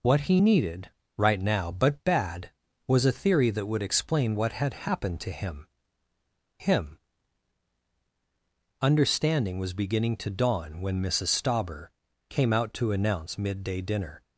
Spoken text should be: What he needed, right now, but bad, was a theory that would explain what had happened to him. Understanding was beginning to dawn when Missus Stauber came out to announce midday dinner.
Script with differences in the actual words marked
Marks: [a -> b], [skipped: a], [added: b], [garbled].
What he needed, right now, but bad, was a theory that would explain what had happened to him. [added: him] Understanding was beginning to dawn when Missus Stauber came out to announce midday dinner.